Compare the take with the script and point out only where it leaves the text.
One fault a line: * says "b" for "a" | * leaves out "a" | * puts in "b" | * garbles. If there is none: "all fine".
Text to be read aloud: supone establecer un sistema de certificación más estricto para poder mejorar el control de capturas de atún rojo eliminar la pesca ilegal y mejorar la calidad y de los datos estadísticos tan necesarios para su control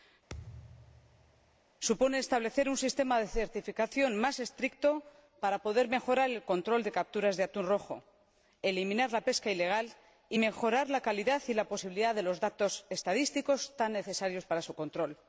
* puts in "la posibilidad"